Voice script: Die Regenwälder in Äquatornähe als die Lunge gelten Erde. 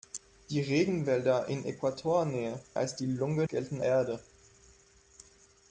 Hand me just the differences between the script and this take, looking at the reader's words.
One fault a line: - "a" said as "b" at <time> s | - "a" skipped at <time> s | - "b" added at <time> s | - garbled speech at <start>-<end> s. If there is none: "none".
none